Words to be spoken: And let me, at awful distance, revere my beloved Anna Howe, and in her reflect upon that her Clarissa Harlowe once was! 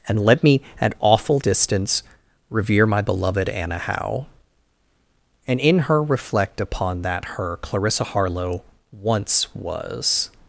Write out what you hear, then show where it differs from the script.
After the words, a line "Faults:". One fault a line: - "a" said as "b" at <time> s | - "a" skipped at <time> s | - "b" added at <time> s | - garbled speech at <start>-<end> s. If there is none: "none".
And let me, at awful distance, revere my beloved Anna Howe, and in her reflect upon that her Clarissa Harlowe once was!
Faults:
none